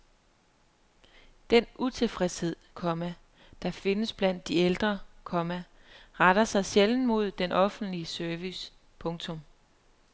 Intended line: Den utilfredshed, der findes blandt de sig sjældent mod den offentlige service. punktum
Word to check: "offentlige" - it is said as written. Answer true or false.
true